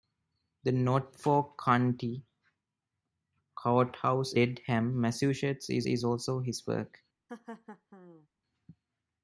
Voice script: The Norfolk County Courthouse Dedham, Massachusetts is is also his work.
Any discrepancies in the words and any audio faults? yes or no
yes